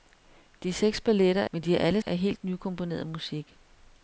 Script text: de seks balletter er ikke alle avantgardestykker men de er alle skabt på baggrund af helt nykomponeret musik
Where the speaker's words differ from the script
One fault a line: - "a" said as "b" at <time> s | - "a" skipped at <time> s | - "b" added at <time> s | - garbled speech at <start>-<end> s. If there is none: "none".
- "ikke alle avantgardestykker" skipped at 1.5 s
- "skabt på baggrund" skipped at 2.0 s